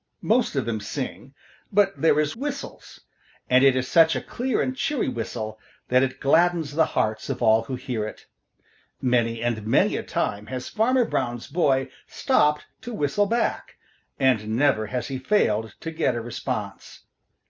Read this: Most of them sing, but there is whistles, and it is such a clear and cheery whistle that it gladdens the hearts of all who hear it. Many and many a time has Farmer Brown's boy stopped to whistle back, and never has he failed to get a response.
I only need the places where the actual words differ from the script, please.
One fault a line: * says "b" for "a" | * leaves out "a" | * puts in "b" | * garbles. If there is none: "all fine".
all fine